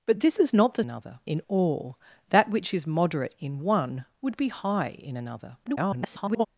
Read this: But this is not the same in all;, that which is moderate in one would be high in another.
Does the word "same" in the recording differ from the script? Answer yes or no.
yes